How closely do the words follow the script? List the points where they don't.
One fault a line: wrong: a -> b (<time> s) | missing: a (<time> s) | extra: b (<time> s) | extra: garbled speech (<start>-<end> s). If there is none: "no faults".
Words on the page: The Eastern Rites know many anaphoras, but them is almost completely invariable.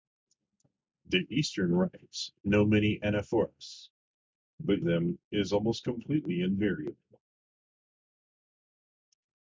no faults